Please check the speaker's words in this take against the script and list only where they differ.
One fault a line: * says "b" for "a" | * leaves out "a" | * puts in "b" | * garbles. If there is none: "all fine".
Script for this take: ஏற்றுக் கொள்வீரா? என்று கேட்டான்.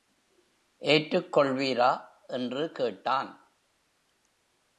all fine